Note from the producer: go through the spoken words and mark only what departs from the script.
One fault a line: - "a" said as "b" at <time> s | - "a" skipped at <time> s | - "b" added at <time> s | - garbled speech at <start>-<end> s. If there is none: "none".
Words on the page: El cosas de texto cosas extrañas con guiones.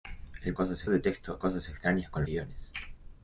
none